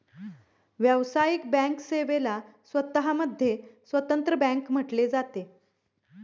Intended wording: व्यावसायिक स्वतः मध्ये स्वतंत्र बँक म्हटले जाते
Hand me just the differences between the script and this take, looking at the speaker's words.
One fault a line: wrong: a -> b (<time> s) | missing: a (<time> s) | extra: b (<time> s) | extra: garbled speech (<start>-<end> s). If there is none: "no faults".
extra: बँक सेवेला (1.5 s)